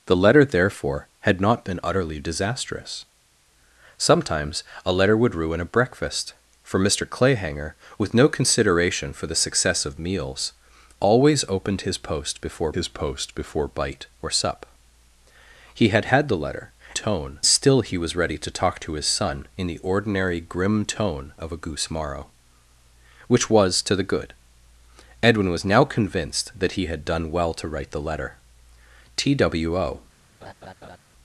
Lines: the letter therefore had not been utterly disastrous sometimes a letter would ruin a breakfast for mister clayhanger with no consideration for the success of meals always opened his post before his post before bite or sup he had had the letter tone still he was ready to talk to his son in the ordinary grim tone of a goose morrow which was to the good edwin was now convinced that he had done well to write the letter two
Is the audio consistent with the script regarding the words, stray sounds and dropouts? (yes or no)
no